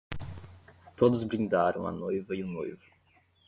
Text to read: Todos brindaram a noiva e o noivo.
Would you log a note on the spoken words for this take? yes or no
no